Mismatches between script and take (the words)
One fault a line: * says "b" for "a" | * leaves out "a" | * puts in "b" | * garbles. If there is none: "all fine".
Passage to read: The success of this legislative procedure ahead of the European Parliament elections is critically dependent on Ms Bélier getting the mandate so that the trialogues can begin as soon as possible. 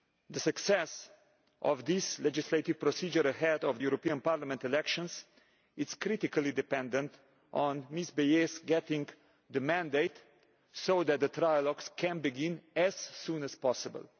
* leaves out "the"